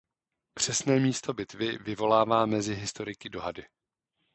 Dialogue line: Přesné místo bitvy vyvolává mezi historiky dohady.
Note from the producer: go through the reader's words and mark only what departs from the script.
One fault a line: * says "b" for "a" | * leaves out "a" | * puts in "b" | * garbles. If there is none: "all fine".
all fine